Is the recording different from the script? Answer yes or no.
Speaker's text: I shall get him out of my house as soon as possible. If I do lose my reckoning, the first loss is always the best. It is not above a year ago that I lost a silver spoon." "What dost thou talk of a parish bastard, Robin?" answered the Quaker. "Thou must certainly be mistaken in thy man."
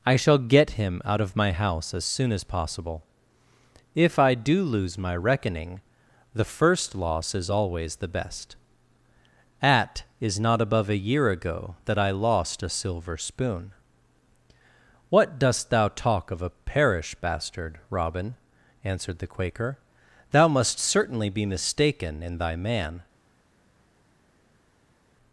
yes